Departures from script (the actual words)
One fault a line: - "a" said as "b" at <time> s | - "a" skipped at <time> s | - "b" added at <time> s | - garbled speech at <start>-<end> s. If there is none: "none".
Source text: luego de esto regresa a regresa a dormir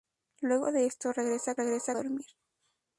none